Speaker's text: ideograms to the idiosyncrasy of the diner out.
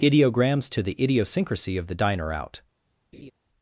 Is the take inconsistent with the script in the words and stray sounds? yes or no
yes